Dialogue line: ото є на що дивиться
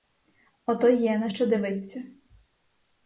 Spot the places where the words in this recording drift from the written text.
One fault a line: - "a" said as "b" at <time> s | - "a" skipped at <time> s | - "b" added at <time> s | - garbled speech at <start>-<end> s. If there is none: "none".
none